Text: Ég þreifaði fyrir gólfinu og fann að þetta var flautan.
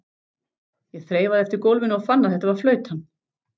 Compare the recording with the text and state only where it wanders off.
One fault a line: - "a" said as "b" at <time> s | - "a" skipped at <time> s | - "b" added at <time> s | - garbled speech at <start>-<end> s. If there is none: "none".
- "fyrir" said as "eftir" at 1.5 s